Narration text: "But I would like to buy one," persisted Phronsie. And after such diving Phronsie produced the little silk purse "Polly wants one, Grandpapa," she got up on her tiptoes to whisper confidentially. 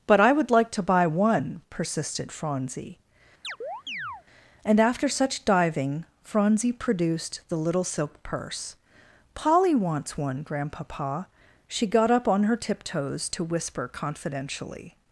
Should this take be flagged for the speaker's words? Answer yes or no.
no